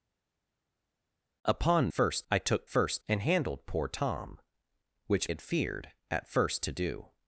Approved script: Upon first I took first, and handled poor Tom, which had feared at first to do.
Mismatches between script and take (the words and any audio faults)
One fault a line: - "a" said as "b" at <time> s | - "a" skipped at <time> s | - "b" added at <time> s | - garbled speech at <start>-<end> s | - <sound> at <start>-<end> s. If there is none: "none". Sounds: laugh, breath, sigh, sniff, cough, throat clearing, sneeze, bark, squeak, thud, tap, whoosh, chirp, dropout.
none